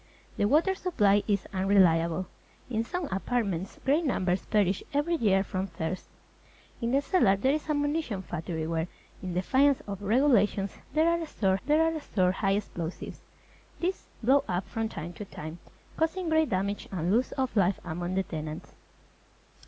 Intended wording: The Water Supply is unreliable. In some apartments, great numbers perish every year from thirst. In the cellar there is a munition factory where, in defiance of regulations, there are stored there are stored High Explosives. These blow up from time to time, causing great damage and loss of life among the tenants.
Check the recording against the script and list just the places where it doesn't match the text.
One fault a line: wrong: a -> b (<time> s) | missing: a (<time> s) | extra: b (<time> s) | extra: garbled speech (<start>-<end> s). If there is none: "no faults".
no faults